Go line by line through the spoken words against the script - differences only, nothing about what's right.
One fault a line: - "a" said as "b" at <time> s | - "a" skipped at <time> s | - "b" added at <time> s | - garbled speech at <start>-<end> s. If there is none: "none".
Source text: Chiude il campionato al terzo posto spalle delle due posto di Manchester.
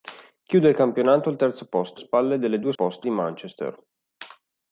none